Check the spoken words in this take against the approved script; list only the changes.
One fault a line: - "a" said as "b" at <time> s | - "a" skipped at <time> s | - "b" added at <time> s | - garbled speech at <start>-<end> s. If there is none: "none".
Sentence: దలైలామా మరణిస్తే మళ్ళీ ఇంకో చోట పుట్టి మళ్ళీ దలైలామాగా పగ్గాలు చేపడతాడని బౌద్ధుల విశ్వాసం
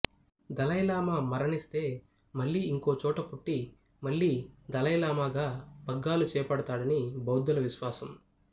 none